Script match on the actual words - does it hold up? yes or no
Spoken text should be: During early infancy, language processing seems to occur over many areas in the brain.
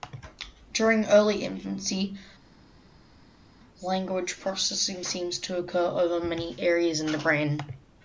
yes